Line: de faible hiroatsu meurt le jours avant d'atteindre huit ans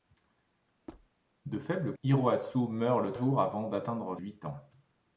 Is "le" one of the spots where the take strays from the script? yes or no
no